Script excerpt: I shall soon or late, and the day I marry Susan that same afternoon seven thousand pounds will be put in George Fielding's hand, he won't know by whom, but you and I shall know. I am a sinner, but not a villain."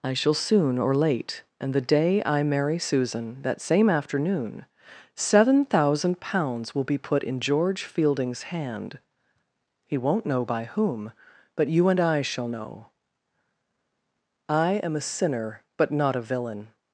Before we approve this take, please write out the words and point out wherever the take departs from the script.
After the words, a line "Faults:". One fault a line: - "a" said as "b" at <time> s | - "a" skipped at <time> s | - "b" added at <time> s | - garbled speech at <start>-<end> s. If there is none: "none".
I shall soon or late, and the day I marry Susan that same afternoon seven thousand pounds will be put in George Fielding's hand, he won't know by whom, but you and I shall know. I am a sinner, but not a villain."
Faults:
none